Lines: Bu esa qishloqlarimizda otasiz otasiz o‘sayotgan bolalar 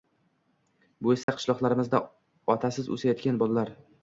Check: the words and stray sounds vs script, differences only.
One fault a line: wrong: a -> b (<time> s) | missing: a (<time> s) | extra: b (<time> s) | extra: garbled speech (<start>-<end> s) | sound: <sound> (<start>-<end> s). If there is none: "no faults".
sound: dropout (1.2-1.3 s)
missing: otasiz (2.9 s)